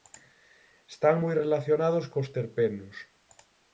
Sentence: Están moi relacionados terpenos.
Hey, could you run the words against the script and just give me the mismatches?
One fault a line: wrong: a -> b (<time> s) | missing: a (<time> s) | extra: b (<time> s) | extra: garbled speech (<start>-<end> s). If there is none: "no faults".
extra: cos (2.1 s)